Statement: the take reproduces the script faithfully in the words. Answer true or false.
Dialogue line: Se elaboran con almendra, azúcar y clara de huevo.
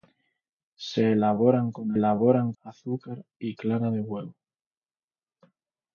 false